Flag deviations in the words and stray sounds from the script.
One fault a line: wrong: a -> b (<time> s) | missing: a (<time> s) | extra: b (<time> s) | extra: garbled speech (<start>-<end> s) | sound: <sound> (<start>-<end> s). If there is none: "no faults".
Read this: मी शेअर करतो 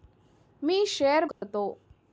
sound: dropout (1.3-1.4 s)